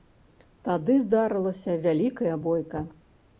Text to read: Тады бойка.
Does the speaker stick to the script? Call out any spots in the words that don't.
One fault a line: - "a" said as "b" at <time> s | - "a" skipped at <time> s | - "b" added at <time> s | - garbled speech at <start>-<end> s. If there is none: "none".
- "здарылася вялікая" added at 1.0 s